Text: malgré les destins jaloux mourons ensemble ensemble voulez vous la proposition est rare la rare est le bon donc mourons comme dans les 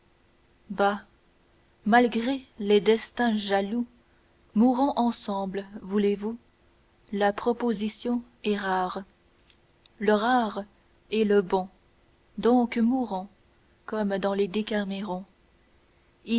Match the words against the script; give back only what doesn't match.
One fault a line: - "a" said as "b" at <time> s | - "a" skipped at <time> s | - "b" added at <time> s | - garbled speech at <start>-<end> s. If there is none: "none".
- "ensemble" skipped at 5.6 s
- "la" said as "le" at 10.0 s